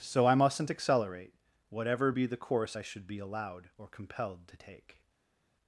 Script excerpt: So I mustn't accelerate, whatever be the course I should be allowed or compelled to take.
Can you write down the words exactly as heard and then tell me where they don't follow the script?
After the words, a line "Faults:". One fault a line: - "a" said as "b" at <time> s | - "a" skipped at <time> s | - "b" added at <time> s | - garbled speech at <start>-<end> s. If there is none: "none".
So I mustn't accelerate, whatever be the course I should be allowed or compelled to take.
Faults:
none